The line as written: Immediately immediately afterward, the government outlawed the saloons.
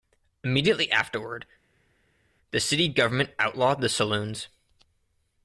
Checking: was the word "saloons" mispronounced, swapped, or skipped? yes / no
no